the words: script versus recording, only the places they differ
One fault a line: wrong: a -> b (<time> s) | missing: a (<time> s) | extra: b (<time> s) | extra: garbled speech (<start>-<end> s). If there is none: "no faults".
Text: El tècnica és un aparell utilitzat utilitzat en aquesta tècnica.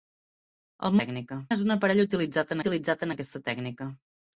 no faults